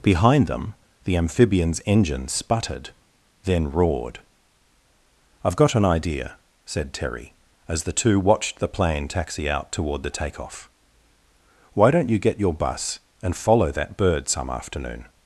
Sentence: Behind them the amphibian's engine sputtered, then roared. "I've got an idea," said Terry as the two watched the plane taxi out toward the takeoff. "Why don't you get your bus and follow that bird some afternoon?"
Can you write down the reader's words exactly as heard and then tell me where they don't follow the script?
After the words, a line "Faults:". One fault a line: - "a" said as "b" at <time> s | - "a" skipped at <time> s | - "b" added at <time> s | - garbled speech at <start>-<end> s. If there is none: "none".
Behind them the amphibian's engine sputtered, then roared. "I've got an idea," said Terry as the two watched the plane taxi out toward the takeoff. "Why don't you get your bus and follow that bird some afternoon?"
Faults:
none